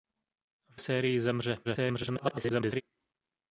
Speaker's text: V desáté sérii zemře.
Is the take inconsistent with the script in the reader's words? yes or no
yes